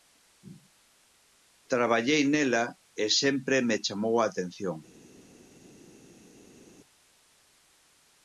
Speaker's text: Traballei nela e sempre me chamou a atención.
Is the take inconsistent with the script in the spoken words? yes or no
no